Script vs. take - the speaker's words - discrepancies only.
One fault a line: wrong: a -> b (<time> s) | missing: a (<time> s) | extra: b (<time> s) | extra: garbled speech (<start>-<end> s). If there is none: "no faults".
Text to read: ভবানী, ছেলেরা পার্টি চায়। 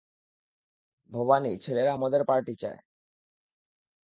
extra: মদের (1.9 s)